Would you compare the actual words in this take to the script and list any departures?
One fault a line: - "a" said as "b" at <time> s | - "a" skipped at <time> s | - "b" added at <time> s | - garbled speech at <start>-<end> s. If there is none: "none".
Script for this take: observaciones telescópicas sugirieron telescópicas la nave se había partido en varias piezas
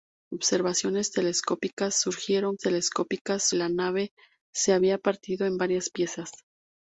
none